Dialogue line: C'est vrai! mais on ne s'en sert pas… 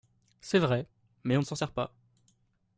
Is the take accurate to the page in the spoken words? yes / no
yes